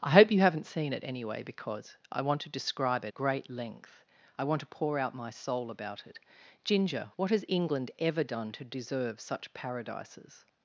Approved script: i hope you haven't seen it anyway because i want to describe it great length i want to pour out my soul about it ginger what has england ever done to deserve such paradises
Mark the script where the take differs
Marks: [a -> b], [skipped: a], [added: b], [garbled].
i hope you haven't seen it anyway because i want to describe it great length i want to pour out my soul about it ginger what has england ever done to deserve such paradises